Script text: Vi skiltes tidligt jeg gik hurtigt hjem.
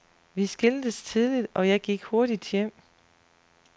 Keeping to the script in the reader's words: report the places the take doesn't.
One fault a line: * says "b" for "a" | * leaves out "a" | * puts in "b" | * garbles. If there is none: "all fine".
* puts in "og"